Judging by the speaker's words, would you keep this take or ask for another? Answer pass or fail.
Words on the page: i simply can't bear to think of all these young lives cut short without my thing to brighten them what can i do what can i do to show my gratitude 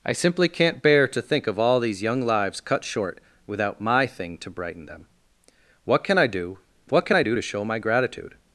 pass